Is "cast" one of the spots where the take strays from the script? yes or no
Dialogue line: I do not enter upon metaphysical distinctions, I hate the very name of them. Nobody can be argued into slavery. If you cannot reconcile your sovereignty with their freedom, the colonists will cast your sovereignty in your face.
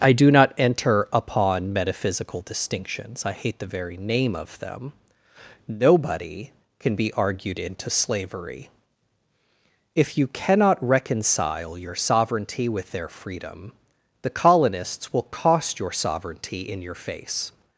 yes